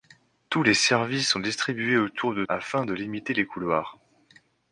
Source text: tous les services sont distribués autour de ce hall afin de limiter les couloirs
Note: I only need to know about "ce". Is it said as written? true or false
false